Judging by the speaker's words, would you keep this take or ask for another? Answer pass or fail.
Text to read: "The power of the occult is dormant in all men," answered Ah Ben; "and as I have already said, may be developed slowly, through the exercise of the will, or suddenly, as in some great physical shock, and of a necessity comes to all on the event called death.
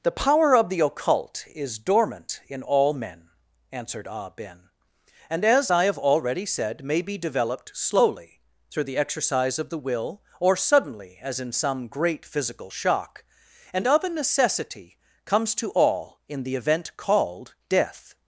fail